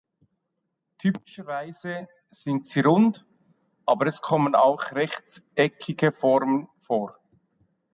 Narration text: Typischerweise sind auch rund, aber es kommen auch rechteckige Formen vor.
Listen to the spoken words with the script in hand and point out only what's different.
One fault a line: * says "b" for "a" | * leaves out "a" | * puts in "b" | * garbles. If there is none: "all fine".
* says "sie" for "auch"